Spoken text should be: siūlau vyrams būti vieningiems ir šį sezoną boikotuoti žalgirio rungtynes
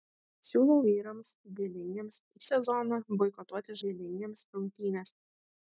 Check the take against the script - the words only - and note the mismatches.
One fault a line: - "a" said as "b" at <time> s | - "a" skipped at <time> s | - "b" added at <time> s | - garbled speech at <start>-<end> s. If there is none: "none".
- "būti" skipped at 1.3 s
- "šį" skipped at 2.5 s
- "žalgirio" said as "vieningiems" at 3.8 s